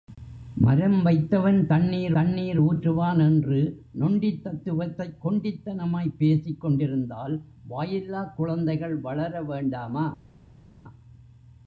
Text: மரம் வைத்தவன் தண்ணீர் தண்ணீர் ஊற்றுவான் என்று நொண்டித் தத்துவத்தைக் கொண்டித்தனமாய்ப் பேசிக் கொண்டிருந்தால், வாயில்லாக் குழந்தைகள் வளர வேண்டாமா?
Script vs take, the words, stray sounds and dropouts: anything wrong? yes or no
no